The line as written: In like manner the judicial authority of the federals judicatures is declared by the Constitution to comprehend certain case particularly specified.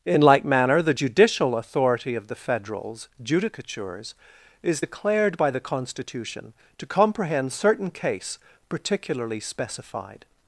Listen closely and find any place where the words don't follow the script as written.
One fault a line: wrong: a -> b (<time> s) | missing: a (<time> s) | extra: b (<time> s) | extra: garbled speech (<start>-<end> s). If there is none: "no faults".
no faults